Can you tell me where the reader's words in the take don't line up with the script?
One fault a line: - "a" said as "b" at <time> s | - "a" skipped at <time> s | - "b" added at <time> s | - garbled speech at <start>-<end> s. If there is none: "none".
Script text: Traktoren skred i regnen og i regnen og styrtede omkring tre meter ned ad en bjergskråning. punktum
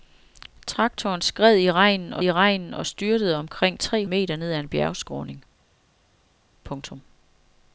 none